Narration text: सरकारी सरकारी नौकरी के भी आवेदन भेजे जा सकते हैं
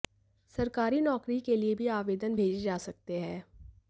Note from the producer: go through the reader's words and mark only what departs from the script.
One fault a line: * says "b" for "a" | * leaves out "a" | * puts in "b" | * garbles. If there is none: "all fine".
* leaves out "सरकारी"
* puts in "लिए"